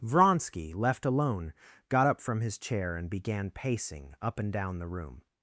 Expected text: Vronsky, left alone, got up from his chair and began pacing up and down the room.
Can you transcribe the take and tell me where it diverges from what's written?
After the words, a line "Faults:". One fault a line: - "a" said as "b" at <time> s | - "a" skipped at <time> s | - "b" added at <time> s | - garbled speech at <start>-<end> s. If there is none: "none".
Vronsky, left alone, got up from his chair and began pacing up and down the room.
Faults:
none